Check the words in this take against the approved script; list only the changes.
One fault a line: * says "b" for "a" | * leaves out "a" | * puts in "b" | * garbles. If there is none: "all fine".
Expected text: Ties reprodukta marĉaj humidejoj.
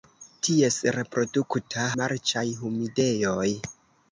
all fine